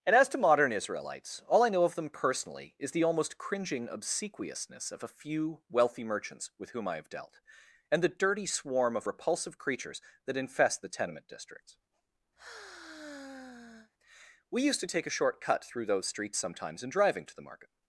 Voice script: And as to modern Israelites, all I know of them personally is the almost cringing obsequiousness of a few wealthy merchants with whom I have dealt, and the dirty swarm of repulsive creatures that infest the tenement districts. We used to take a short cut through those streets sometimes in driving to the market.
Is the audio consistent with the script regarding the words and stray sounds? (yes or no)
no